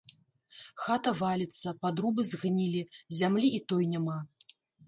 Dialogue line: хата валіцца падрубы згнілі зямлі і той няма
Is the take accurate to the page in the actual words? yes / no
yes